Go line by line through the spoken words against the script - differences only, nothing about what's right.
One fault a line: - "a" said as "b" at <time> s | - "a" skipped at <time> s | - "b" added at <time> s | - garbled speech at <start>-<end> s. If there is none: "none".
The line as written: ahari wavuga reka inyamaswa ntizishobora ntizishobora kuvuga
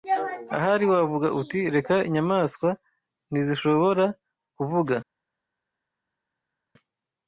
- "uti" added at 1.4 s
- "ntizishobora" skipped at 4.0 s